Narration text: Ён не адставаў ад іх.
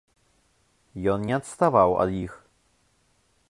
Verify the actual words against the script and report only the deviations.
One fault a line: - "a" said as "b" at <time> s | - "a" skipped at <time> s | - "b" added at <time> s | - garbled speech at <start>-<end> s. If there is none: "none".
none